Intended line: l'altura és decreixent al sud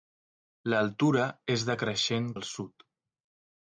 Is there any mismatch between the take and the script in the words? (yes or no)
no